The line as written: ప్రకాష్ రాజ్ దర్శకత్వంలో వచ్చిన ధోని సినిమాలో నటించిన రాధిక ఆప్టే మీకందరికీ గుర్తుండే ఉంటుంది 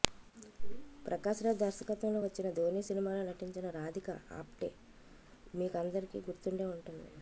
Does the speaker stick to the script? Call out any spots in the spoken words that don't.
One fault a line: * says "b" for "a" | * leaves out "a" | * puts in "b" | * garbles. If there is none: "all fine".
all fine